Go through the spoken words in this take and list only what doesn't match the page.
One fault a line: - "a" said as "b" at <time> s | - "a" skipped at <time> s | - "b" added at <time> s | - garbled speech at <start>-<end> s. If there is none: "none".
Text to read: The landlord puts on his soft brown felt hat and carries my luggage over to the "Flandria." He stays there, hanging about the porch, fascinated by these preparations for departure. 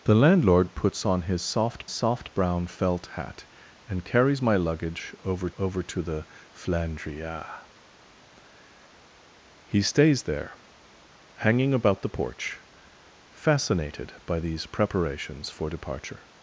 - "soft" added at 1.9 s
- "over" added at 5.6 s